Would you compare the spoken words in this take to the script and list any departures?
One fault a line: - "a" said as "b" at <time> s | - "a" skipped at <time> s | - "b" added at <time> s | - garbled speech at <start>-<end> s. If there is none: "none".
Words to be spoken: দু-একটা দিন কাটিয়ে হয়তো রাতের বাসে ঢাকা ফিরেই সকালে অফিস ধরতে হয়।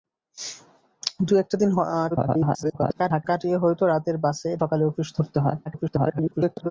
- garbled speech at 2.1-3.2 s
- "ঢাকা ফিরেই" skipped at 4.5 s
- garbled speech at 5.7-6.7 s